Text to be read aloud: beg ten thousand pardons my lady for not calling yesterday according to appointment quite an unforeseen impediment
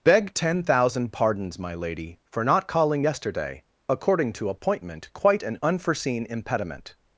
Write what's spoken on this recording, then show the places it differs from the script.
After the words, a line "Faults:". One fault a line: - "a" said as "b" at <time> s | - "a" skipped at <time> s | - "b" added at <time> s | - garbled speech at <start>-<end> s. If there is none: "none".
beg ten thousand pardons my lady for not calling yesterday according to appointment quite an unforeseen impediment
Faults:
none